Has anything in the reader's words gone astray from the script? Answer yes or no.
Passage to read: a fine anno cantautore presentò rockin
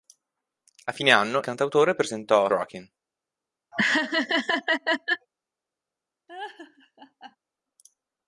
no